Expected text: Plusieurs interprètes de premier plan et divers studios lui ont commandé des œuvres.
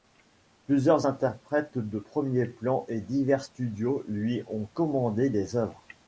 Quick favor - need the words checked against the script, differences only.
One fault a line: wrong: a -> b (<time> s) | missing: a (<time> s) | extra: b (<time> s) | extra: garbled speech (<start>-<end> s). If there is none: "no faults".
no faults